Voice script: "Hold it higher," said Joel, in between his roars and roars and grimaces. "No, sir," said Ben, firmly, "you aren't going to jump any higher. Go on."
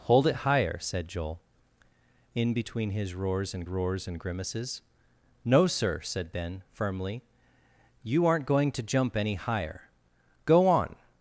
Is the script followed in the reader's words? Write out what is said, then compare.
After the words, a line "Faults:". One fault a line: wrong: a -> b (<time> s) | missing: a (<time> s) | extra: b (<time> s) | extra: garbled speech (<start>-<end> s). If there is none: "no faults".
"Hold it higher," said Joel, in between his roars and roars and grimaces. "No, sir," said Ben, firmly, "you aren't going to jump any higher. Go on."
Faults:
no faults